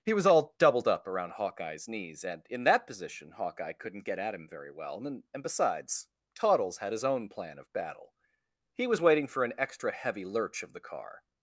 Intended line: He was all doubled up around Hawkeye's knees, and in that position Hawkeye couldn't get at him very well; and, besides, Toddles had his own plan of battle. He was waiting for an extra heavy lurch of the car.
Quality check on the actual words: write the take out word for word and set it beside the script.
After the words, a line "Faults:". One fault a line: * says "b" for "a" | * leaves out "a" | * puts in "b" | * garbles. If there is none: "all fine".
He was all doubled up around Hawkeye's knees, and in that position Hawkeye couldn't get at him very well; and, and besides, Toddles had his own plan of battle. He was waiting for an extra heavy lurch of the car.
Faults:
* puts in "and"